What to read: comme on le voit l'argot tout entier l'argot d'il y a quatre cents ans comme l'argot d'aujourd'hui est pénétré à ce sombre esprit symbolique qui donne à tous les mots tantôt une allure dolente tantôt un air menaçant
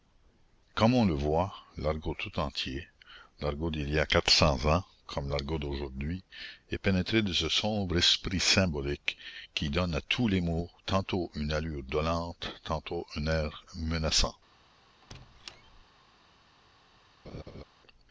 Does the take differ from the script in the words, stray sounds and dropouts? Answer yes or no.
yes